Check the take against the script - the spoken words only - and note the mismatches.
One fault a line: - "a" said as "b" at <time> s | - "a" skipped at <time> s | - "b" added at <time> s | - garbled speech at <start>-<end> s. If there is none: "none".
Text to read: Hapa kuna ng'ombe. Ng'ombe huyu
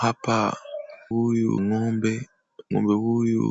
- "kuna" said as "huyu" at 1.1 s